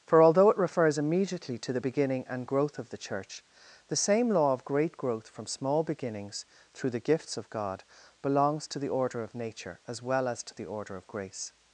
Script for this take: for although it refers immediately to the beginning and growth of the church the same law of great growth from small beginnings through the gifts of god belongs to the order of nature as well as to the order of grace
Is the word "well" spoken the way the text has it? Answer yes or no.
yes